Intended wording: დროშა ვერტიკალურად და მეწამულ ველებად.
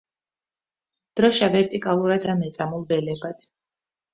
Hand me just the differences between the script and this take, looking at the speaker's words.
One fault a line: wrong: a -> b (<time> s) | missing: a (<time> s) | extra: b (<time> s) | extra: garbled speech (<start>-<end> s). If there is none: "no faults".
no faults